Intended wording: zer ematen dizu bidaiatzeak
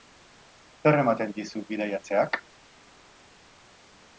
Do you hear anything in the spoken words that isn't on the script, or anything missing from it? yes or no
no